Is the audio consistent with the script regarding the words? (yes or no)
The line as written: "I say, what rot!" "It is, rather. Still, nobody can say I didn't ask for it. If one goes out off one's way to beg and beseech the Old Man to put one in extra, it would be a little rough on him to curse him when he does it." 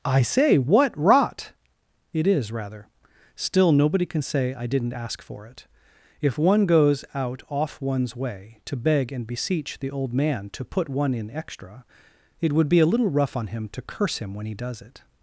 yes